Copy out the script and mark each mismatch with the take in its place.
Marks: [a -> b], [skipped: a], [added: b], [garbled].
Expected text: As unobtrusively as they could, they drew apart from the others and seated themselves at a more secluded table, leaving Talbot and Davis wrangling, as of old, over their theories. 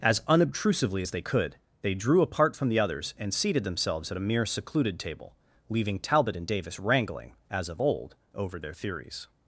As unobtrusively as they could, they drew apart from the others and seated themselves at a [more -> mere] secluded table, leaving Talbot and Davis wrangling, as of old, over their theories.